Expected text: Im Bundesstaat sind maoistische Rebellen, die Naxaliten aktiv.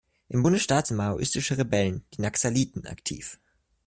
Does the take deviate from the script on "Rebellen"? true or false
false